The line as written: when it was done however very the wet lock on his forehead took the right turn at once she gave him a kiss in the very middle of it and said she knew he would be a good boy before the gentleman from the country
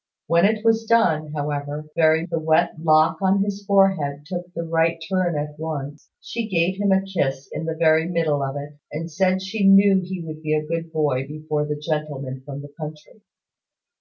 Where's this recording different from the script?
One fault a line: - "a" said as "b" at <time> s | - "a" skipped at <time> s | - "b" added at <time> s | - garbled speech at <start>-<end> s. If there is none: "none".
none